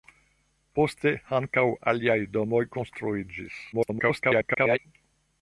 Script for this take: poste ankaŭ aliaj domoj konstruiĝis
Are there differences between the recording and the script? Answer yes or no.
yes